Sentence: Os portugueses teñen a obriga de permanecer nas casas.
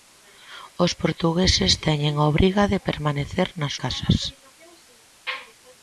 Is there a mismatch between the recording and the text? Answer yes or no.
no